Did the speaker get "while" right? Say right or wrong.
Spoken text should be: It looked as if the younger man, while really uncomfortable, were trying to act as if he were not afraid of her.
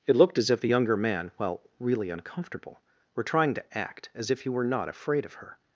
right